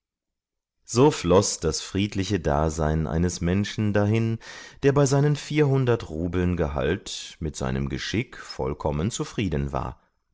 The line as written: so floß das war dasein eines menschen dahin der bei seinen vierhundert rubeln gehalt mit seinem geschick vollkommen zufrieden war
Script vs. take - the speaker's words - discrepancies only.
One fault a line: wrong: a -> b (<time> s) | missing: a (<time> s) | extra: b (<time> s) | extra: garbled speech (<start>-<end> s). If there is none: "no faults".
wrong: war -> friedliche (1.8 s)